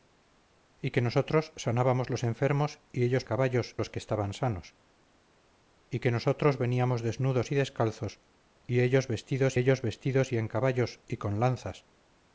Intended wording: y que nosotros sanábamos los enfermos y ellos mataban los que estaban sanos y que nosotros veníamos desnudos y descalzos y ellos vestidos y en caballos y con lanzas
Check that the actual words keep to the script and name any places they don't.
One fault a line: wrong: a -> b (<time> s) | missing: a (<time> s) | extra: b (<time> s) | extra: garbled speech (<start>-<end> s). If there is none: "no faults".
wrong: mataban -> caballos (3.2 s)
extra: ellos vestidos (9.5 s)